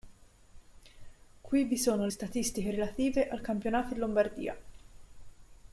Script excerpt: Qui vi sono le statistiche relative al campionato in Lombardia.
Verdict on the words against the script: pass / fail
fail